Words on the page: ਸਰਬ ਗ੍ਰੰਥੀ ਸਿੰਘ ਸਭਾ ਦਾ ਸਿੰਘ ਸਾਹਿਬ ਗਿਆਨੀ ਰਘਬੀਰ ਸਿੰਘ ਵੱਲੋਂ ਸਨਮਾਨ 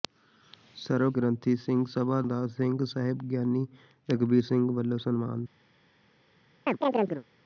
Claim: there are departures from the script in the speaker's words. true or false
false